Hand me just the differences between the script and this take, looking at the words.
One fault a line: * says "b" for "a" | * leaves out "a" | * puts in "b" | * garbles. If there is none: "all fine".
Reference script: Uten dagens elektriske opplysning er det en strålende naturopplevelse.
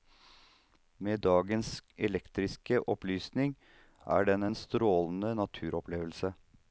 * says "Med" for "Uten"
* says "den" for "det"